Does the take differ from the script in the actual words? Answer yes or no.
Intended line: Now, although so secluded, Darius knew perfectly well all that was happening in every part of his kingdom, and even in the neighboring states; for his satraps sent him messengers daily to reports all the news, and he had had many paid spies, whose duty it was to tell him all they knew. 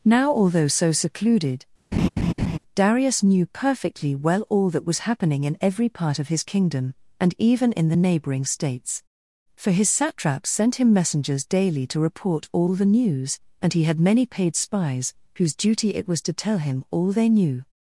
yes